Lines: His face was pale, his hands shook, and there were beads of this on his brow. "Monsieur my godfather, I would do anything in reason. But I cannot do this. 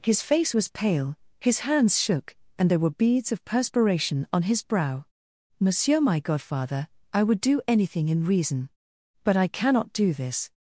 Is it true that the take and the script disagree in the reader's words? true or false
true